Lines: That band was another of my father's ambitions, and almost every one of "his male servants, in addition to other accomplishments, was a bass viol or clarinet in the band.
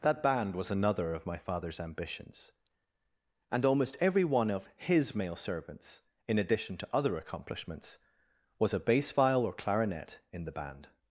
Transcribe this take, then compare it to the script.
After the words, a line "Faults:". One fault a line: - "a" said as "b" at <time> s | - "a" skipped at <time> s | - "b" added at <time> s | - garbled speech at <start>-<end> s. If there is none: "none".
That band was another of my father's ambitions, and almost every one of "his male servants, in addition to other accomplishments, was a bass viol or clarinet in the band.
Faults:
none